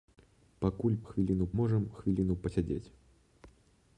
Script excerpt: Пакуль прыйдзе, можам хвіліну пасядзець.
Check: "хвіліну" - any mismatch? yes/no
no